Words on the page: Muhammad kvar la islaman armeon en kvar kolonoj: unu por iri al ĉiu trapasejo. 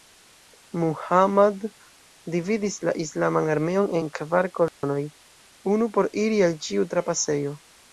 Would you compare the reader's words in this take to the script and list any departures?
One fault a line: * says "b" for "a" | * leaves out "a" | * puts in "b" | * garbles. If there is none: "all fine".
* says "dividis" for "kvar"